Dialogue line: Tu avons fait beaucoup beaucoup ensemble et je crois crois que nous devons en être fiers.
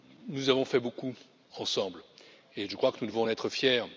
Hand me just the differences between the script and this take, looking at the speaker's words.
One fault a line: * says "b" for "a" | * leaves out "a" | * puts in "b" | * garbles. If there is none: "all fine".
* says "Nous" for "Tu"
* leaves out "beaucoup"
* leaves out "crois"